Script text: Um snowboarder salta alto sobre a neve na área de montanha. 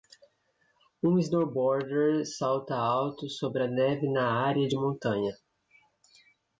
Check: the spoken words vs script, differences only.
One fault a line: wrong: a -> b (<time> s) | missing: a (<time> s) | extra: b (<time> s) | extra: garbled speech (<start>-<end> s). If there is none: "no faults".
no faults